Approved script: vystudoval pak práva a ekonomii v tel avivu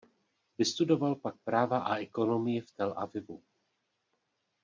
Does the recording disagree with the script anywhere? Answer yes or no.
no